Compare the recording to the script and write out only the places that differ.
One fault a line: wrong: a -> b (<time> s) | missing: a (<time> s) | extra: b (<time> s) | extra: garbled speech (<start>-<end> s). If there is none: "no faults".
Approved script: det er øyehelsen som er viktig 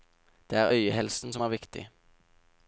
no faults